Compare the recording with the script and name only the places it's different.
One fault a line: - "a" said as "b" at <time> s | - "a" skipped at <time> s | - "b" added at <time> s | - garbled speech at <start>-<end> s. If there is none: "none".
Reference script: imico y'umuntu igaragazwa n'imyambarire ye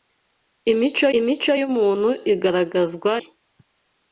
- "imico" added at 1.2 s
- "n'imyambarire" skipped at 3.1 s